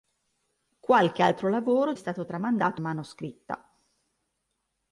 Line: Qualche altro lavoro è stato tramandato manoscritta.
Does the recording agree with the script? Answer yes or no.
yes